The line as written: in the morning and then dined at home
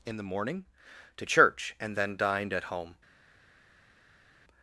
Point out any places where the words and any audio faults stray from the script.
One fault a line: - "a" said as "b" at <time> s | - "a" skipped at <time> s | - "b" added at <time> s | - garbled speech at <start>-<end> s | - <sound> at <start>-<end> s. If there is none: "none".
- "to church" added at 1.2 s